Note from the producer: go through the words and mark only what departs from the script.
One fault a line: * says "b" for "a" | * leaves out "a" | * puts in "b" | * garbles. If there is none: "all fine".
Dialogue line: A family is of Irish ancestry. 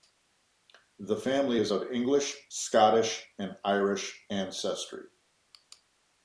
* says "The" for "A"
* puts in "English Scottish and"